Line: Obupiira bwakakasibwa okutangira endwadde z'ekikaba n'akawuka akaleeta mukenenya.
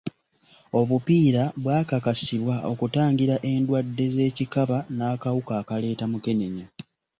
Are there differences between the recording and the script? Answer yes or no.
no